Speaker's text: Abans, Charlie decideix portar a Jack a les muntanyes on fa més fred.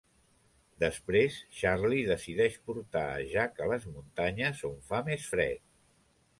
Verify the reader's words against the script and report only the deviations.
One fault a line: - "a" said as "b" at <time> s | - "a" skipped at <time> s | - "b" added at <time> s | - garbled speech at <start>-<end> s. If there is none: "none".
- "Abans" said as "Després" at 0.8 s